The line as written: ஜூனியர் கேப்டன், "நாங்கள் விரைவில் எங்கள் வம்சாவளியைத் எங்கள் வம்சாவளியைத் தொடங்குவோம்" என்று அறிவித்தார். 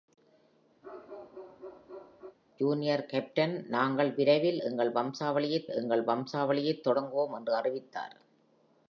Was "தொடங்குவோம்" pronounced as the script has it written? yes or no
yes